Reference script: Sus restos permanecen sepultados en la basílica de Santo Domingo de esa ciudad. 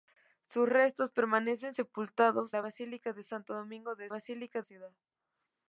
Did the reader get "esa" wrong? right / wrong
wrong